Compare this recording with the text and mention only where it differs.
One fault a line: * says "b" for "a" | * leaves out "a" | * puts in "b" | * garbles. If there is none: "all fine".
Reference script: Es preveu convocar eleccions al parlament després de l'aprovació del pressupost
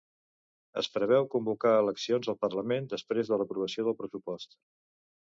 all fine